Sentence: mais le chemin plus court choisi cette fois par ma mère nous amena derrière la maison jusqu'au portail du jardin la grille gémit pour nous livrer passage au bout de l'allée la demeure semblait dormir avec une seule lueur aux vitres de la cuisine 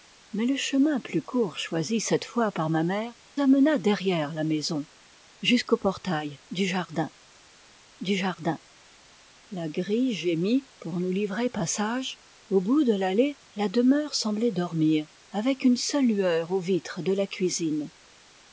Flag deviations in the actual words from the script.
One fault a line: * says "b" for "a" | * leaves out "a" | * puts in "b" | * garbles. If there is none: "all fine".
* leaves out "nous"
* puts in "du jardin"